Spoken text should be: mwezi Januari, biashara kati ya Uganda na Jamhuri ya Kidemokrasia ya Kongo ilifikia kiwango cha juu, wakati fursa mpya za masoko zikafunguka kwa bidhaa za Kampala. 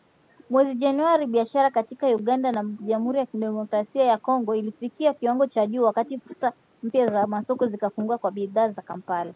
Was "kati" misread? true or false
false